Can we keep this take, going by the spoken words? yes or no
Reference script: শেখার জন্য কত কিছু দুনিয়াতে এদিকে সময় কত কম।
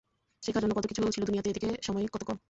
no